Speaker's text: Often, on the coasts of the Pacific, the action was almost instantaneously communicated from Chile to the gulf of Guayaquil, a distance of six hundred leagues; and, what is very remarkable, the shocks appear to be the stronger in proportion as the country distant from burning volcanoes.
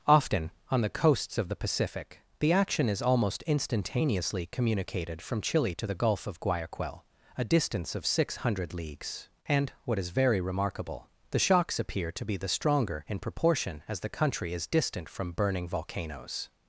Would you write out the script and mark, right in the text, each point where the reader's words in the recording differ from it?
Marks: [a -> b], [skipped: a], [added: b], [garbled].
Often, on the coasts of the Pacific, the action [was -> is] almost instantaneously communicated from Chile to the gulf of Guayaquil, a distance of six hundred leagues; and, what is very remarkable, the shocks appear to be the stronger in proportion as the country [added: is] distant from burning volcanoes.